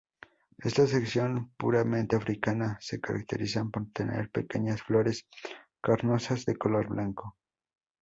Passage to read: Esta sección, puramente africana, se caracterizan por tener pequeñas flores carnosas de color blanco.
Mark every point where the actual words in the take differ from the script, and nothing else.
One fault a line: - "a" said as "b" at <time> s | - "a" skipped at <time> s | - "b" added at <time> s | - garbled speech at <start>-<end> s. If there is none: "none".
none